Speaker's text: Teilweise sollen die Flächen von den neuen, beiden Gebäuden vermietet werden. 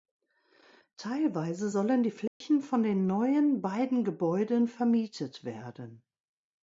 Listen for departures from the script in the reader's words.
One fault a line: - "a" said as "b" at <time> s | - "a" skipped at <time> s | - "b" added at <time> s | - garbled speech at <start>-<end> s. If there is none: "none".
none